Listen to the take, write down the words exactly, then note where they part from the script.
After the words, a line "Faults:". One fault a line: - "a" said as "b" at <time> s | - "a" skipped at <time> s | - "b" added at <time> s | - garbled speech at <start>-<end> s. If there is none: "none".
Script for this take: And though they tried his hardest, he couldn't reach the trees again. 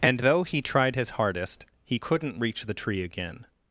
And though he tried his hardest, he couldn't reach the tree again.
Faults:
- "they" said as "he" at 0.4 s
- "trees" said as "tree" at 2.7 s